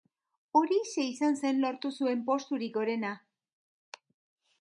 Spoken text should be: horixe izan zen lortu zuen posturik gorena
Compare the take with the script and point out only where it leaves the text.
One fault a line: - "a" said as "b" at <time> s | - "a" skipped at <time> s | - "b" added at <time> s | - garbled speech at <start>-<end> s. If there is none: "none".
none